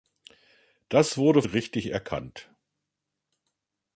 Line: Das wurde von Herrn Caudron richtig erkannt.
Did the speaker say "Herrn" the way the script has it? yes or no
no